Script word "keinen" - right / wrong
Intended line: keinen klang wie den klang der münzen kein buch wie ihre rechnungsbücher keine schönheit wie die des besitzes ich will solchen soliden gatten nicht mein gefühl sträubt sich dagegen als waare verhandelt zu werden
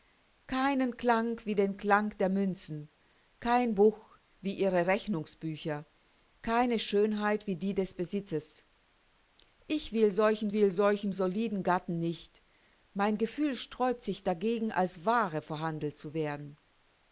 right